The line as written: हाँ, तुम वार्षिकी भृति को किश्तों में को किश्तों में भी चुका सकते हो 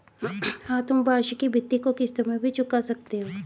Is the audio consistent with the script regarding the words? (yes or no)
no